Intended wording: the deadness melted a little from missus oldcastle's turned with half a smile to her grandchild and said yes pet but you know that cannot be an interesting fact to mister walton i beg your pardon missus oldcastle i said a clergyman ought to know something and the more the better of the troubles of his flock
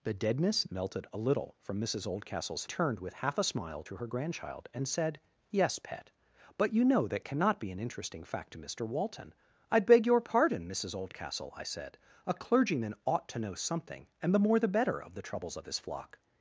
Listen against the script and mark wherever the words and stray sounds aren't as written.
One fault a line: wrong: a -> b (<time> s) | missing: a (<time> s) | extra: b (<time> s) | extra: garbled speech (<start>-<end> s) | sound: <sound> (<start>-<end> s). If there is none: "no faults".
no faults